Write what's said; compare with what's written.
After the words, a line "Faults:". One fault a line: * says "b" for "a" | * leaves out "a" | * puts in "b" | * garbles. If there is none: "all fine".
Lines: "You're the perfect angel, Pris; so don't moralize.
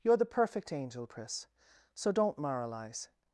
"You're the perfect angel, Pris; so don't moralize.
Faults:
all fine